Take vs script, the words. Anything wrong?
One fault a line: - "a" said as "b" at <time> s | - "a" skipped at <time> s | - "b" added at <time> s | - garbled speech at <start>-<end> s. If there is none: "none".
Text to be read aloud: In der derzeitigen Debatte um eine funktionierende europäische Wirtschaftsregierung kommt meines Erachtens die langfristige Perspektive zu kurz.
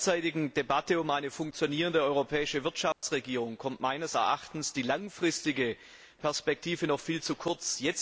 - "noch viel" added at 6.9 s